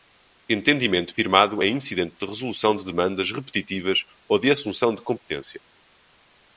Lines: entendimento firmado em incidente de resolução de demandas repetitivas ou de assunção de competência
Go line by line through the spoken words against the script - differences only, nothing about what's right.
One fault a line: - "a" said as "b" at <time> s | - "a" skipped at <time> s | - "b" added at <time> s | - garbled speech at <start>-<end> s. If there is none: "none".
none